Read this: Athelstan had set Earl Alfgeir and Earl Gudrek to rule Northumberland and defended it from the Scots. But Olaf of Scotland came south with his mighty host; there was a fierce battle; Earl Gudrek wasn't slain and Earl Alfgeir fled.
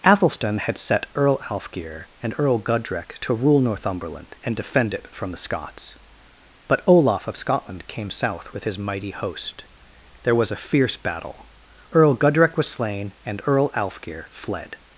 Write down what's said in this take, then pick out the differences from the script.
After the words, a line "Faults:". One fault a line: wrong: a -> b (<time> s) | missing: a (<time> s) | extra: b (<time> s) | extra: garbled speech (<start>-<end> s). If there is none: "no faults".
Athelstan had set Earl Alfgeir and Earl Gudrek to rule Northumberland and defend it from the Scots. But Olaf of Scotland came south with his mighty host; there was a fierce battle; Earl Gudrek was slain and Earl Alfgeir fled.
Faults:
wrong: defended -> defend (4.5 s)
wrong: wasn't -> was (12.6 s)